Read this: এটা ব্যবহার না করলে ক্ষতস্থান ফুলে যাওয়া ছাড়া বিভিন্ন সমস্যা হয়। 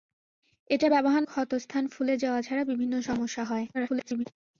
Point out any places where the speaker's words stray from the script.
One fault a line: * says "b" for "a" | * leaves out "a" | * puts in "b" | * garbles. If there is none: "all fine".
* leaves out "না করলে"
* garbles